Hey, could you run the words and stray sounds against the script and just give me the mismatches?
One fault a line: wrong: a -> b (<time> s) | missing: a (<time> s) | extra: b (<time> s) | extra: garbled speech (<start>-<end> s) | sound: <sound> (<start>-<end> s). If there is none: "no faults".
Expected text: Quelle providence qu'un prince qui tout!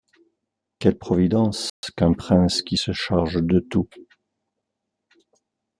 sound: dropout (1.7-1.8 s)
extra: se charge de (2.8 s)